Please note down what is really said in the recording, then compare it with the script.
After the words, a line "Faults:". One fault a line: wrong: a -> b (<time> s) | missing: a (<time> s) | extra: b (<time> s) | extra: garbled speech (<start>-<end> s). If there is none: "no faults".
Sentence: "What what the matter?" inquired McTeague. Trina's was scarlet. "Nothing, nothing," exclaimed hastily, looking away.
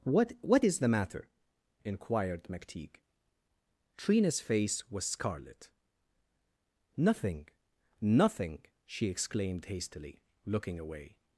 "What what is the matter?" inquired McTeague. Trina's face was scarlet. "Nothing, nothing," she exclaimed hastily, looking away.
Faults:
extra: is (0.6 s)
extra: face (4.4 s)
extra: she (8.8 s)